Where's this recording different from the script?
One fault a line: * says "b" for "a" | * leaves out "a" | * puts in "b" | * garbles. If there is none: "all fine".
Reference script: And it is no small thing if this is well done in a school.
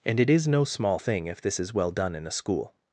all fine